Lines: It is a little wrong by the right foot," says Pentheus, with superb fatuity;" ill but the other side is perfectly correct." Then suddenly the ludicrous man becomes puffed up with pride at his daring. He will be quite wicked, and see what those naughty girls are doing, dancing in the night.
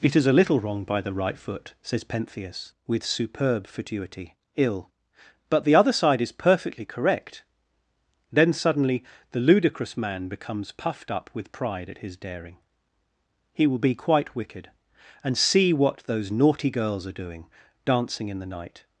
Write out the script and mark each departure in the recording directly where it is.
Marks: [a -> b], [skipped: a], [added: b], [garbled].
It is a little wrong by the right foot," says Pentheus, with superb fatuity;" ill but the other side is perfectly correct." Then suddenly the ludicrous man becomes puffed up with pride at his daring. He will be quite wicked, and see what those naughty girls are doing, dancing in the night.